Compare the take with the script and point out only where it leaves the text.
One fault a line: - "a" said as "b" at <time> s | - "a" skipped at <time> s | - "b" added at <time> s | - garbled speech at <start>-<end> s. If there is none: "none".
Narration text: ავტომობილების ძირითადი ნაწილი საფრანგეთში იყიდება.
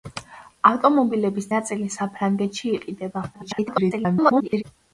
- "ძირითადი" skipped at 1.5 s
- garbled speech at 3.3-4.6 s